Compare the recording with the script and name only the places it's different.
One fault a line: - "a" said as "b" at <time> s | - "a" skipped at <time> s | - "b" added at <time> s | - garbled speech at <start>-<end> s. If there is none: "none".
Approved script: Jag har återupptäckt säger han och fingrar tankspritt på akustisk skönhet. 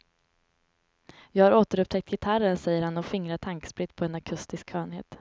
- "gitarren" added at 2.1 s
- "en" added at 4.0 s